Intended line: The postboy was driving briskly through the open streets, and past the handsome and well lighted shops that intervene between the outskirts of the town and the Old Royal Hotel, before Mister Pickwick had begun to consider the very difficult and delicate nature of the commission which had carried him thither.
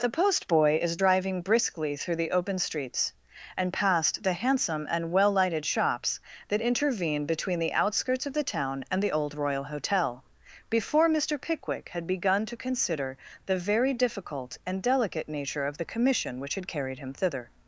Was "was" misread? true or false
true